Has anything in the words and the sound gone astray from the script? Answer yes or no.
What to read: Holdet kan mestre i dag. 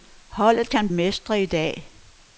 no